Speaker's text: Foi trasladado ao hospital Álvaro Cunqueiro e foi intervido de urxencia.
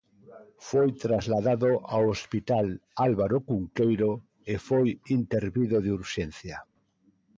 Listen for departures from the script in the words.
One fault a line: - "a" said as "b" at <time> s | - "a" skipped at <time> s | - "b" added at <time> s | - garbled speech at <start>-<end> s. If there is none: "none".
none